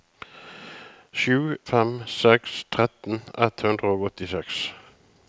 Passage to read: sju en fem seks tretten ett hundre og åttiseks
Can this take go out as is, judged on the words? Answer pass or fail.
fail